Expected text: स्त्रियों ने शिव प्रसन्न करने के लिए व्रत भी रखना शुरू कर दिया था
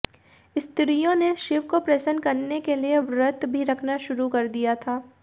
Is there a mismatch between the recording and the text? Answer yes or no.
yes